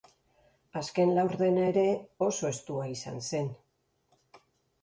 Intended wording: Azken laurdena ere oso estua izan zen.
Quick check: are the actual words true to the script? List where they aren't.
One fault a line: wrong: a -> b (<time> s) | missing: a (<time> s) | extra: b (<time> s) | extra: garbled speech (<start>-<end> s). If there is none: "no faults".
no faults